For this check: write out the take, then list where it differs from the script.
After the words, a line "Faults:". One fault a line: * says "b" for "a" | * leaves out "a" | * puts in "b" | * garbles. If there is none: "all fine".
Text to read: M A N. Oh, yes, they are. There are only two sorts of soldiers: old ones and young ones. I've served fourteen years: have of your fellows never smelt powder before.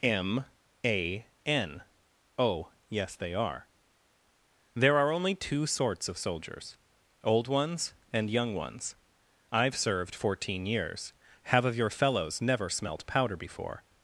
M A N. Oh, yes, they are. There are only two sorts of soldiers: old ones and young ones. I've served fourteen years: have of your fellows never smelt powder before.
Faults:
all fine